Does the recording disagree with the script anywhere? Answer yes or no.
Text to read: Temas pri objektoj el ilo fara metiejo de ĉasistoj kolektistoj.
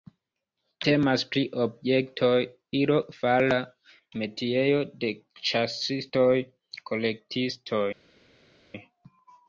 yes